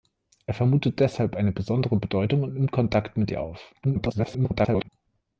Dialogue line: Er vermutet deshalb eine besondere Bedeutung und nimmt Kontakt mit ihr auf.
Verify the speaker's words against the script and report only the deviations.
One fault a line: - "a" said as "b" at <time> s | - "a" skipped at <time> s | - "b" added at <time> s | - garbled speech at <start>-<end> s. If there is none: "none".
- garbled speech at 3.8-4.9 s